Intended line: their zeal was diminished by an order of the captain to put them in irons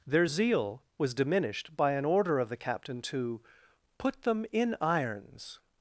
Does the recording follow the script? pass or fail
pass